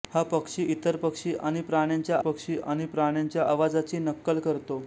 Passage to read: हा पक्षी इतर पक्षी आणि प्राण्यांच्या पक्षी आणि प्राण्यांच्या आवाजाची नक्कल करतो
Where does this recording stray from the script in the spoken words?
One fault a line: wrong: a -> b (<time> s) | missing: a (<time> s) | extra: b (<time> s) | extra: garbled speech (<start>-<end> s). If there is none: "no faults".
no faults